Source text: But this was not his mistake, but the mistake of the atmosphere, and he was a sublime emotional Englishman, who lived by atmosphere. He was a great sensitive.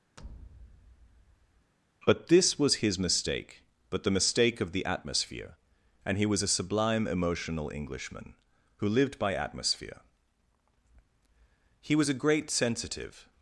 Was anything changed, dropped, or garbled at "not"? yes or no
yes